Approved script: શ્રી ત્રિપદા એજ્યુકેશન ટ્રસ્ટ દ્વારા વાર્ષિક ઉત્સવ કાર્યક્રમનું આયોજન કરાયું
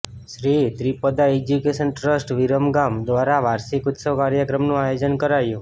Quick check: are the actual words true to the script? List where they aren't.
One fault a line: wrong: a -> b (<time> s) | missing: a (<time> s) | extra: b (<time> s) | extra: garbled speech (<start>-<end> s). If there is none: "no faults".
extra: વિરમગામ (2.4 s)